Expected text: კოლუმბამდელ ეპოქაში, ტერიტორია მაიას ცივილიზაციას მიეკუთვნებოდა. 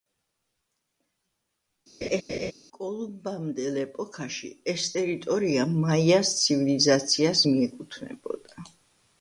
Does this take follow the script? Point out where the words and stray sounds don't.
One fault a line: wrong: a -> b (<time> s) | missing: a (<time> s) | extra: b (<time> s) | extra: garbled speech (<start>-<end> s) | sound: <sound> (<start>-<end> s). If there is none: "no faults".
sound: laugh (2.0-2.5 s)
extra: ეს (4.7 s)